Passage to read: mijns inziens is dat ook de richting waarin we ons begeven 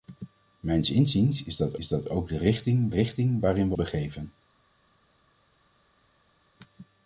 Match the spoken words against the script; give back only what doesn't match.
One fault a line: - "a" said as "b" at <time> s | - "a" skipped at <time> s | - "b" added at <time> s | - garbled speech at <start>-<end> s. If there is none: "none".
- "is dat" added at 1.7 s
- "richting" added at 2.9 s
- "ons" skipped at 3.7 s